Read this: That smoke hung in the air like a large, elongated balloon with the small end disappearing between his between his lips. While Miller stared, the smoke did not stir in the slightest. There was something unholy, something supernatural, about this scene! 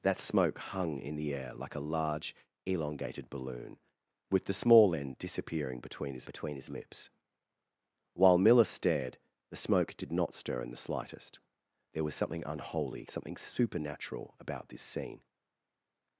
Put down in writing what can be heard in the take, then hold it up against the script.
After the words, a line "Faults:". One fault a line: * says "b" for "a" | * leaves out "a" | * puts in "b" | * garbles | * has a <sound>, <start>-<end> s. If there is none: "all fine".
That smoke hung in the air like a large, elongated balloon with the small end disappearing between his between his lips. While Miller stared, the smoke did not stir in the slightest. There was something unholy, something supernatural, about this scene!
Faults:
all fine